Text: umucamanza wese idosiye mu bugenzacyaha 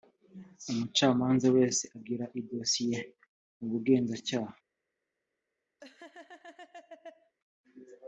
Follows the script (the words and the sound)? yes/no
no